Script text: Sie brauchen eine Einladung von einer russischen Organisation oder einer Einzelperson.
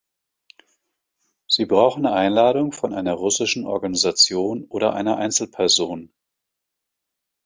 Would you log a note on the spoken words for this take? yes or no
yes